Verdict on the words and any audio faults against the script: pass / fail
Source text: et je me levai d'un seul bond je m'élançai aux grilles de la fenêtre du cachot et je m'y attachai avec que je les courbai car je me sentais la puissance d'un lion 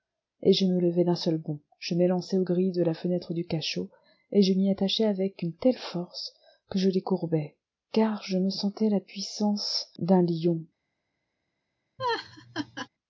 fail